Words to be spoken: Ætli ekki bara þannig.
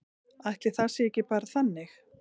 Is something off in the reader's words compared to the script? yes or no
yes